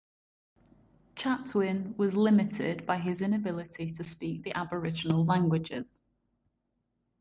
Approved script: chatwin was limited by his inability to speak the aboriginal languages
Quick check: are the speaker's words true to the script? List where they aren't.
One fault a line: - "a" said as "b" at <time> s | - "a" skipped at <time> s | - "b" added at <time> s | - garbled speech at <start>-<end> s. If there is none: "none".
none